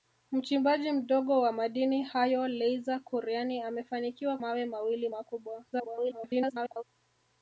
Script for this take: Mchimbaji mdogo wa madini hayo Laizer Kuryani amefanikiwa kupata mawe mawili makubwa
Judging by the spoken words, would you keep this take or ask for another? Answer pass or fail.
fail